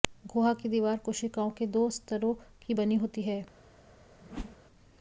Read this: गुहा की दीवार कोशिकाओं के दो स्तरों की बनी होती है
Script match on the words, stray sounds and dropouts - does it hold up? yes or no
no